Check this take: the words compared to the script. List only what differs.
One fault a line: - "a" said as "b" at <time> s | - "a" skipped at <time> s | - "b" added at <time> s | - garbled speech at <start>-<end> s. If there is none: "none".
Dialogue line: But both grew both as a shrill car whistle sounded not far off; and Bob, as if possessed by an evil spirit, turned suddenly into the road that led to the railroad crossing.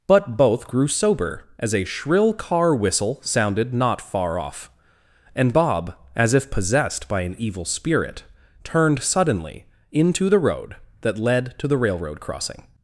- "both" said as "sober" at 0.9 s